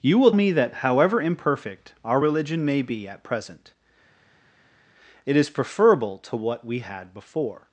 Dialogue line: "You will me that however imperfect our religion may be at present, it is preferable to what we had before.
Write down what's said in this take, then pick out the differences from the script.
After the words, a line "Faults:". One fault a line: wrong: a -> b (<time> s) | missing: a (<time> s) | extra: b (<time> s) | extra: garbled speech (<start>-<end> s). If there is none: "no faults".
"You will me that however imperfect our religion may be at present, it is preferable to what we had before.
Faults:
no faults